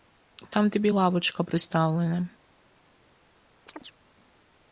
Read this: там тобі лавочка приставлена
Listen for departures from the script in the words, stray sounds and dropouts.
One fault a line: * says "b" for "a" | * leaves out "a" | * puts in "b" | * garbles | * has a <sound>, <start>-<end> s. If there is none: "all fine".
* has a chirp, 3.7-3.9 s